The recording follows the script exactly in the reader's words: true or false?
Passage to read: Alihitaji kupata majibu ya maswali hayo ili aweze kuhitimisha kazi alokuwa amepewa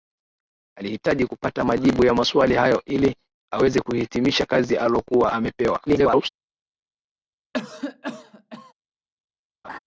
false